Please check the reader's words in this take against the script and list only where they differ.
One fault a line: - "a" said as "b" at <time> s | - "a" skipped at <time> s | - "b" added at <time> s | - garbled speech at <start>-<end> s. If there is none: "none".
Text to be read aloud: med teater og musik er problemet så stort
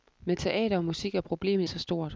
none